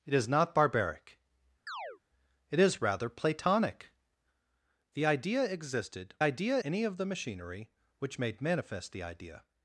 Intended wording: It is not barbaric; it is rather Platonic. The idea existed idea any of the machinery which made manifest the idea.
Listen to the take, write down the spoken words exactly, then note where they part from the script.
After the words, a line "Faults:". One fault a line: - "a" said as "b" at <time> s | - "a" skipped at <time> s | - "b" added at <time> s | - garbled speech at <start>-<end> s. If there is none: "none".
It is not barbaric; it is rather Platonic. The idea existed idea any of the machinery which made manifest the idea.
Faults:
none